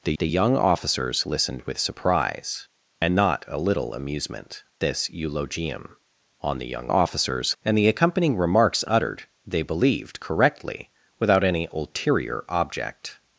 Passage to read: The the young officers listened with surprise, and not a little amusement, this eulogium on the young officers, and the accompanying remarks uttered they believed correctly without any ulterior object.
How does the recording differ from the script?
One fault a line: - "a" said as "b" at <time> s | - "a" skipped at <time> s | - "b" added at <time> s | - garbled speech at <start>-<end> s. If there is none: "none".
none